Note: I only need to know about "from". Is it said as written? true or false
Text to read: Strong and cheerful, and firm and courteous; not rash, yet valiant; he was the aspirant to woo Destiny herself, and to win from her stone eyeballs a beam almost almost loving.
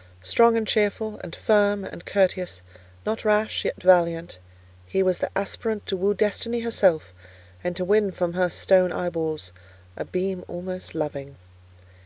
true